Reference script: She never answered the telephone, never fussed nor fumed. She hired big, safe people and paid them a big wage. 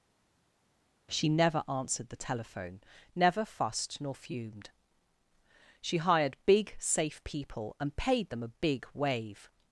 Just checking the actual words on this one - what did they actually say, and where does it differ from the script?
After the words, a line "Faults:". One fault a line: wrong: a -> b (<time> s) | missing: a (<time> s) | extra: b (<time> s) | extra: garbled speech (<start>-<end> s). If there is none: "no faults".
She never answered the telephone, never fussed nor fumed. She hired big, safe people and paid them a big wave.
Faults:
wrong: wage -> wave (8.9 s)